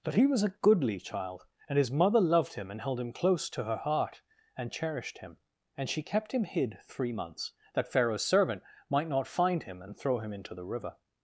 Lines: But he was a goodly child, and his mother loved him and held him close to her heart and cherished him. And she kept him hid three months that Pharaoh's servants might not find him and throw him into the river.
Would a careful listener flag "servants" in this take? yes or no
yes